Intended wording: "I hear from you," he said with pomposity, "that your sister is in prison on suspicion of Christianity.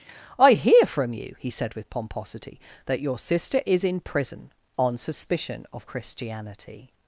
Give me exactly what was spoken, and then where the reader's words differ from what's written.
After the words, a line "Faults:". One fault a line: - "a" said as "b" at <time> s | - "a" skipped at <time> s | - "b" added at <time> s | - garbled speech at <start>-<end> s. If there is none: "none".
"I hear from you," he said with pomposity, "that your sister is in prison on suspicion of Christianity.
Faults:
none